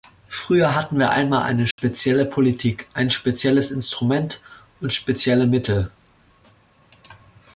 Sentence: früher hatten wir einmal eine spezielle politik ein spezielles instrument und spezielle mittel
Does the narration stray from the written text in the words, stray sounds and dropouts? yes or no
yes